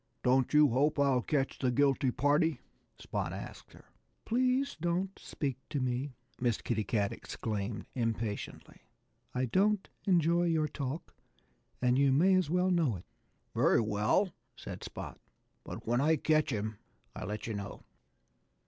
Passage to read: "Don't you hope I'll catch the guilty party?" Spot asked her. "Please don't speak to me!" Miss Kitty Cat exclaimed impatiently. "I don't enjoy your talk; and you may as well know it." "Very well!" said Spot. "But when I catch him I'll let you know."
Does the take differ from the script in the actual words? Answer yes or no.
no